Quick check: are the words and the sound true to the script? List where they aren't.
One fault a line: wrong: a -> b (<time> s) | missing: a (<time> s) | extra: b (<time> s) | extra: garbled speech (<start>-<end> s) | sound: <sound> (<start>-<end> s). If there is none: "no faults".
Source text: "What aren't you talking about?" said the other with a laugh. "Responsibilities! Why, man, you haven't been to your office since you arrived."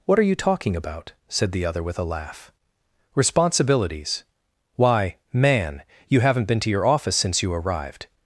wrong: aren't -> are (0.2 s)